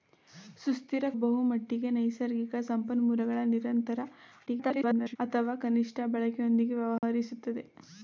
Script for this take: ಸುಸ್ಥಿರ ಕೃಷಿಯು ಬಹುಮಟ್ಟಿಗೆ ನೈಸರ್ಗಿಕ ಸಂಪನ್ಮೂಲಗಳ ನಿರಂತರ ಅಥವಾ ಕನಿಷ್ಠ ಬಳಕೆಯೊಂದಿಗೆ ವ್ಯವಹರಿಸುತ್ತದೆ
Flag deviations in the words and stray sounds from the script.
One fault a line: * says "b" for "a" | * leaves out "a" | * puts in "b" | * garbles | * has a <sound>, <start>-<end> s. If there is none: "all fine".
* leaves out "ಕೃಷಿಯು"
* garbles
* has a dropout, 7.0-7.0 s